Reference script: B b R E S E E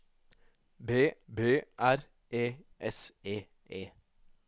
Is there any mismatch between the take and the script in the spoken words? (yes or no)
no